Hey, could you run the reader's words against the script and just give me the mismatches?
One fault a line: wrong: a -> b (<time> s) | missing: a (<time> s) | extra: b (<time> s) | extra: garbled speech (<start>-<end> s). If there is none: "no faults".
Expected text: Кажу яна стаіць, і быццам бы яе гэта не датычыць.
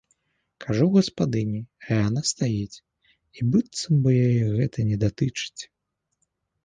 extra: гаспадыні а (0.9 s)